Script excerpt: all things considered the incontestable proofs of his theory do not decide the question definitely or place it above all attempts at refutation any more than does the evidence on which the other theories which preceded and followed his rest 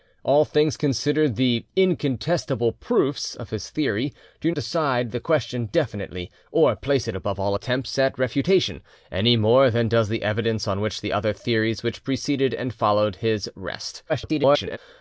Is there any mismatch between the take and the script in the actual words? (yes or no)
yes